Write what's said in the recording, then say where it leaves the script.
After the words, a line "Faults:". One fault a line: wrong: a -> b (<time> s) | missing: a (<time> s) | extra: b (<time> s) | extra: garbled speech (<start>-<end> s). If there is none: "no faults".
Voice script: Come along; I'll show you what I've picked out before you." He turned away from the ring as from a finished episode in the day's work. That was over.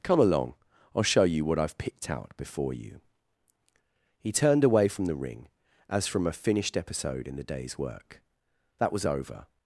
Come along; I'll show you what I've picked out before you." He turned away from the ring as from a finished episode in the day's work. That was over.
Faults:
no faults